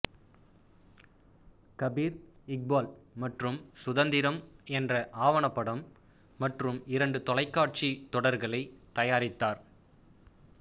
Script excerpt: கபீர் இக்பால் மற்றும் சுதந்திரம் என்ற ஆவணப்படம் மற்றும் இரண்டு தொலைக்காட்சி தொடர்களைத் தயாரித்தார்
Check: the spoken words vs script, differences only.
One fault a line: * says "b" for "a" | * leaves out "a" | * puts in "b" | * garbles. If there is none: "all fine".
all fine